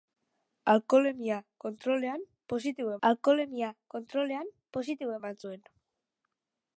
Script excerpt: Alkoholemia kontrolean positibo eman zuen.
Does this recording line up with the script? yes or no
no